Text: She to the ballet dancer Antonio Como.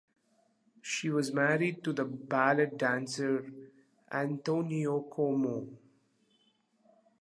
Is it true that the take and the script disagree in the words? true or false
true